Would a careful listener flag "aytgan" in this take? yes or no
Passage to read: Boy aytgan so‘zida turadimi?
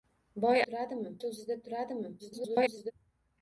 yes